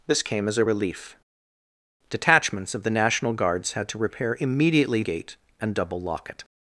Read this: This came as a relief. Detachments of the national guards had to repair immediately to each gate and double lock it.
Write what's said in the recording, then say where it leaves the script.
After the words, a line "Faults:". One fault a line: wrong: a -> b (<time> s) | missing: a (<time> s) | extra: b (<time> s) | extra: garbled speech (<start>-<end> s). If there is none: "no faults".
This came as a relief. Detachments of the national guards had to repair immediately gate and double lock it.
Faults:
missing: to each (5.0 s)